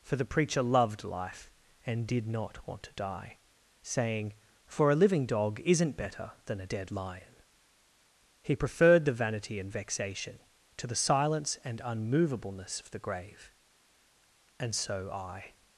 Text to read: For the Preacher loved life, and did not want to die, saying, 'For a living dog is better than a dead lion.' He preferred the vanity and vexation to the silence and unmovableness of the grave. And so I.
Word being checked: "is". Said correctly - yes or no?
no